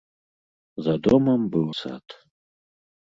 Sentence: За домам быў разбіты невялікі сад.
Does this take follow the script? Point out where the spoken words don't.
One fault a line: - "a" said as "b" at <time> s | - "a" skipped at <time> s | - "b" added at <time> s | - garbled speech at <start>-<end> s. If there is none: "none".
- "разбіты невялікі" skipped at 1.6 s